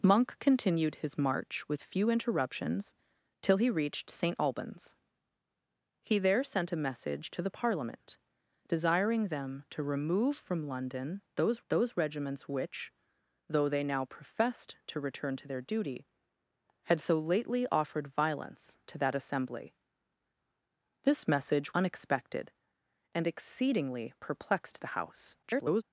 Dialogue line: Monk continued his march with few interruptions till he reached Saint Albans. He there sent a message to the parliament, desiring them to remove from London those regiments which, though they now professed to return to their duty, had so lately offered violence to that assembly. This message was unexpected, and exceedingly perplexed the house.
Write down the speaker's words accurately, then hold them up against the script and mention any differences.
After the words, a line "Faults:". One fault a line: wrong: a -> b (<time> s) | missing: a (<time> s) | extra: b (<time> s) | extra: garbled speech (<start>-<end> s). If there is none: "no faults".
Monk continued his march with few interruptions till he reached Saint Albans. He there sent a message to the parliament, desiring them to remove from London those those regiments which, though they now professed to return to their duty, had so lately offered violence to that assembly. This message unexpected, and exceedingly perplexed the house. [garbled]
Faults:
extra: those (11.7 s)
missing: was (21.7 s)
extra: garbled speech (25.4-25.8 s)